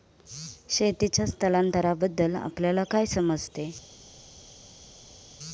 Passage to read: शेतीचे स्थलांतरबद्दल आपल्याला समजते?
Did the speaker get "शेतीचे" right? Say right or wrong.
right